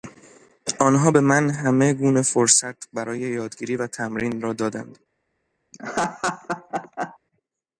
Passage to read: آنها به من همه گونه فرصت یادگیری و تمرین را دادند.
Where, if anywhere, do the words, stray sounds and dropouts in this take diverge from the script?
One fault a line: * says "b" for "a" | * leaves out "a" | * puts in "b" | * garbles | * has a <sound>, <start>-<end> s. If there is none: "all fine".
* puts in "برای"
* has a laugh, 5.7-7.2 s